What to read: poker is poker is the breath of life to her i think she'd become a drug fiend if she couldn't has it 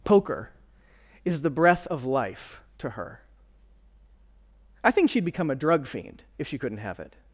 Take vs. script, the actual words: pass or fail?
fail